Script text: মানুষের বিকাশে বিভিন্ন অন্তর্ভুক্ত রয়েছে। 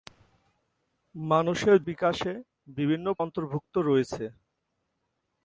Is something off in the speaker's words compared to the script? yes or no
no